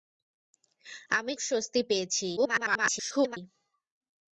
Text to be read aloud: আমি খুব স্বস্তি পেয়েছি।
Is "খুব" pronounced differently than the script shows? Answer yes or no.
yes